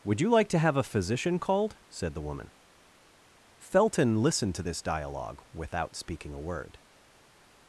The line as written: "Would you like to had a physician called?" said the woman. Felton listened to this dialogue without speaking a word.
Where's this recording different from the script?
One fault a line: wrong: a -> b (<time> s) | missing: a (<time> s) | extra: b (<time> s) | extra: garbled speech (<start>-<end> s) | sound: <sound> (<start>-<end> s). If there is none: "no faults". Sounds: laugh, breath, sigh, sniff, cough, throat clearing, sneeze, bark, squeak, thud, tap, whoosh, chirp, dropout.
wrong: had -> have (0.6 s)